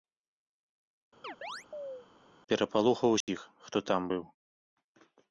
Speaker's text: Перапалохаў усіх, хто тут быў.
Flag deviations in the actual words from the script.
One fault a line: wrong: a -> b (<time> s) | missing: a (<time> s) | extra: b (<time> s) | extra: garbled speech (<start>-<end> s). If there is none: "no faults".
wrong: тут -> там (3.9 s)